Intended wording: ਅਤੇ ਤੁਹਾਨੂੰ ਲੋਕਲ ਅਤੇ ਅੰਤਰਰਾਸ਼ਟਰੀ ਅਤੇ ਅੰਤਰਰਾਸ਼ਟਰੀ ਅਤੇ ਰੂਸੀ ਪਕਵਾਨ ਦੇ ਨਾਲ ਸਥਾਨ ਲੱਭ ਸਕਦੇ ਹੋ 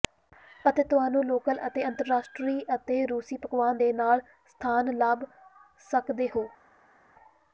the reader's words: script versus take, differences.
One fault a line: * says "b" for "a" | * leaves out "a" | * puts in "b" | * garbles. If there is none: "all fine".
* leaves out "ਅੰਤਰਰਾਸ਼ਟਰੀ ਅਤੇ"